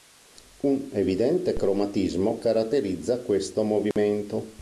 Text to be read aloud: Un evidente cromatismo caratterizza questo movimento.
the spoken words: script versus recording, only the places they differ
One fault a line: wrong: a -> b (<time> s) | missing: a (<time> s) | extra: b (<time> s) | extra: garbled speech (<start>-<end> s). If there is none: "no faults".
no faults